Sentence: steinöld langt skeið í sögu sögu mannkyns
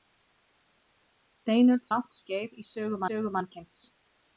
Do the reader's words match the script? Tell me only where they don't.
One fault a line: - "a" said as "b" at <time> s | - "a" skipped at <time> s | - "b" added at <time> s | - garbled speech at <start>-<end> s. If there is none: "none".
none